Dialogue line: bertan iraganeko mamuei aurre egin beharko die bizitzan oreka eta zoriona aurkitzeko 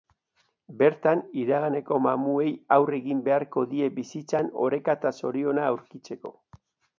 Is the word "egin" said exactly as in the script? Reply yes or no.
yes